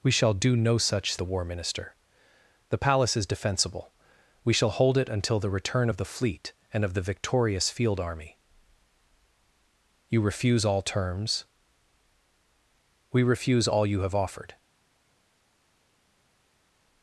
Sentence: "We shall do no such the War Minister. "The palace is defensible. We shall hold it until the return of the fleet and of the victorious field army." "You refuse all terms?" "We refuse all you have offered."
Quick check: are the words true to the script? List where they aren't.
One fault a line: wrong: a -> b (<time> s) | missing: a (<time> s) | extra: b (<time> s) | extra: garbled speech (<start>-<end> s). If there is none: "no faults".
no faults